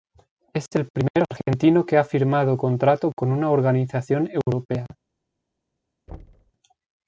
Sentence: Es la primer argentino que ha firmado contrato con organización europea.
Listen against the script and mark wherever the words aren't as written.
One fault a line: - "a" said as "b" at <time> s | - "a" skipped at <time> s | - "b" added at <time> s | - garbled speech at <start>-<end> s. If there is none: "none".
- "la" said as "el" at 0.7 s
- "una" added at 3.3 s